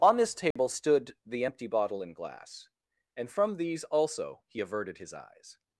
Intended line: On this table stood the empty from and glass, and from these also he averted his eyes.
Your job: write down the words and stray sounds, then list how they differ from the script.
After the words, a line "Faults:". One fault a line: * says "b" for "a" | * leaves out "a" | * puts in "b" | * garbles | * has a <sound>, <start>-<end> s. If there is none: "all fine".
On this table stood the empty bottle and glass, and from these also he averted his eyes.
Faults:
* has a dropout, 0.5-0.6 s
* says "bottle" for "from"